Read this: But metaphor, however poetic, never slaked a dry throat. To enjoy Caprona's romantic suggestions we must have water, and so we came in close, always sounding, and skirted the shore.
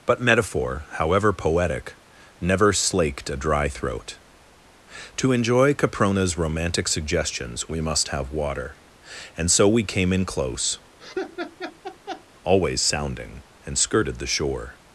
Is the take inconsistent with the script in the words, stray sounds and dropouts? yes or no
yes